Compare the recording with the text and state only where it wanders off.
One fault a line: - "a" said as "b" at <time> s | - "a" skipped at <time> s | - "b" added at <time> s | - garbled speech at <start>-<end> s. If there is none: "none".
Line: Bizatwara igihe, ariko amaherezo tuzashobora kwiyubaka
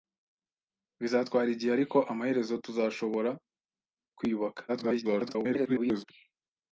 - garbled speech at 4.7-6.0 s